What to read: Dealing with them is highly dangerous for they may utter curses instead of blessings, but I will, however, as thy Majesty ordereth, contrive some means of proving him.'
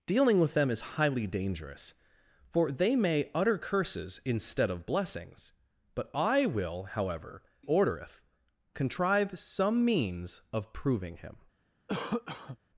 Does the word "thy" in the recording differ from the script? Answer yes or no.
yes